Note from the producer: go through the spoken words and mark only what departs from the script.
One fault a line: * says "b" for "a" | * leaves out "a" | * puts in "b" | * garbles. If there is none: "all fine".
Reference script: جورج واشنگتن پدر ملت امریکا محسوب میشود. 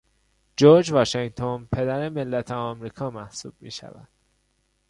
all fine